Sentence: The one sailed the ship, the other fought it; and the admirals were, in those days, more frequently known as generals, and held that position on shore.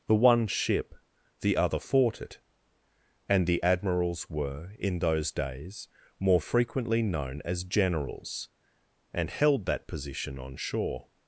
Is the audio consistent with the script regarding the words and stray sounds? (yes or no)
no